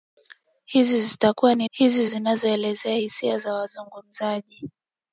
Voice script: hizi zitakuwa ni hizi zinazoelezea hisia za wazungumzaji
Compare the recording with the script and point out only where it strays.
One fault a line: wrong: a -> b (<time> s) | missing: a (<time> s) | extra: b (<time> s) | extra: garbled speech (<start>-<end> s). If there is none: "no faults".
no faults